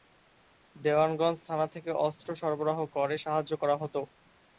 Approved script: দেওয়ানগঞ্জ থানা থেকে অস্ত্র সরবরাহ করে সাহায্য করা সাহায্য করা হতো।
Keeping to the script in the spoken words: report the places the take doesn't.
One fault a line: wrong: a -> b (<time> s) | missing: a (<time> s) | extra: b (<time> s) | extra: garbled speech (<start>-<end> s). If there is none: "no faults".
missing: সাহায্য করা (3.8 s)